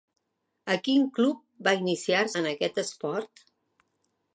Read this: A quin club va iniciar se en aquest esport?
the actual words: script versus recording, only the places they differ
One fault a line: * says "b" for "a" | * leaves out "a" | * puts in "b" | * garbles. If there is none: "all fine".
* leaves out "se"